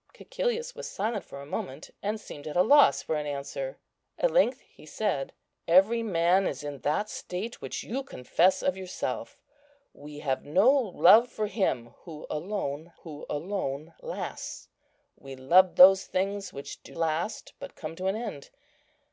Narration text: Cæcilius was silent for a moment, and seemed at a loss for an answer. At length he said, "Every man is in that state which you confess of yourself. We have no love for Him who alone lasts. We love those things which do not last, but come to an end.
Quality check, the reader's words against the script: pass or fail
fail